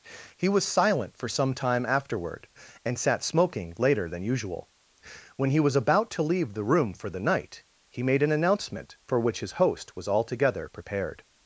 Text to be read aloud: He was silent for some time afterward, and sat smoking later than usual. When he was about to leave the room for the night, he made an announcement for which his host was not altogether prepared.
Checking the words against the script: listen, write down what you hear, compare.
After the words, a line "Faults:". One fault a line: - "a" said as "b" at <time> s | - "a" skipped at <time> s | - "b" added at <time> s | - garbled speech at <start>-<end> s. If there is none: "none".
He was silent for some time afterward, and sat smoking later than usual. When he was about to leave the room for the night, he made an announcement for which his host was altogether prepared.
Faults:
- "not" skipped at 10.1 s